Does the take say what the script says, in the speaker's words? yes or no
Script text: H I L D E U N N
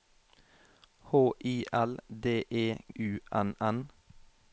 yes